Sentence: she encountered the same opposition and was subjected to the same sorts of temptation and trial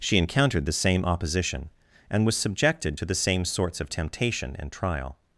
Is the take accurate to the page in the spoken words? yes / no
yes